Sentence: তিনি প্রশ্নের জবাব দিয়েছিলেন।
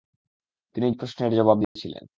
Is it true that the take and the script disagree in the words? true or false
false